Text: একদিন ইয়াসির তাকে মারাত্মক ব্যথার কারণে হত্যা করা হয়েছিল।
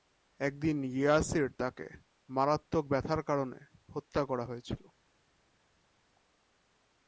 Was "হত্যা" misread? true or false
false